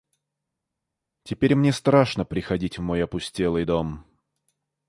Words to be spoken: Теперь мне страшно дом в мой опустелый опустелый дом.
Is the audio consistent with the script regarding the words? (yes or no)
no